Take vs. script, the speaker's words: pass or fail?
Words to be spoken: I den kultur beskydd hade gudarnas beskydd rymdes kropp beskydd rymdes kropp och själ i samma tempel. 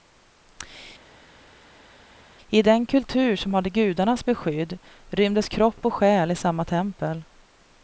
fail